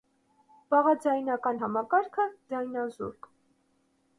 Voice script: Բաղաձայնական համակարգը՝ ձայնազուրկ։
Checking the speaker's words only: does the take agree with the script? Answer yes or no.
yes